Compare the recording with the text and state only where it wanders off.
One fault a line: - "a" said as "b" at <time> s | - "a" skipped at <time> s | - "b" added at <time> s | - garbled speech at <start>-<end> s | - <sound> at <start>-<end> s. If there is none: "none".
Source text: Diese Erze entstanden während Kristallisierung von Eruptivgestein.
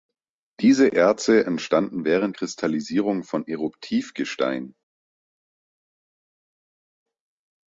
none